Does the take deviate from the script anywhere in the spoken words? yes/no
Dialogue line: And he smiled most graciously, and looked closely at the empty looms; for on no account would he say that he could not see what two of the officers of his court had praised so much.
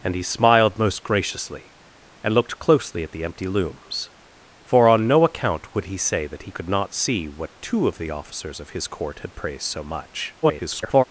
yes